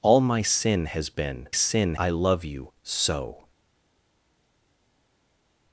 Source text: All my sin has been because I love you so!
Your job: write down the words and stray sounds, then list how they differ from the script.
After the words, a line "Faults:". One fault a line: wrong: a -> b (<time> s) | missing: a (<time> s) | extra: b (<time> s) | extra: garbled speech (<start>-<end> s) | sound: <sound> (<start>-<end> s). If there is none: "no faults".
All my sin has been sin I love you so!
Faults:
wrong: because -> sin (1.5 s)